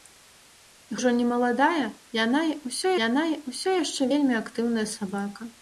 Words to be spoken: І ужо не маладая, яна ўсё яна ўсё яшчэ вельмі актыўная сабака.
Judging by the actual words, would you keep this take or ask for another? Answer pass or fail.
pass